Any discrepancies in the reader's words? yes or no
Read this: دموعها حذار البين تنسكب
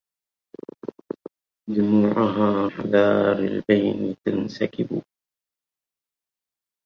no